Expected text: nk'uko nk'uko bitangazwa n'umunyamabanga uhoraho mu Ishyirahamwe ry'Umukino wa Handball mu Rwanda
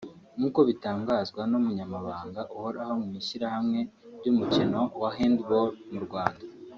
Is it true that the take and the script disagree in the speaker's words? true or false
true